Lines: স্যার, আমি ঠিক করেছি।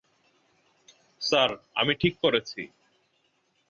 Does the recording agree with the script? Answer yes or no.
yes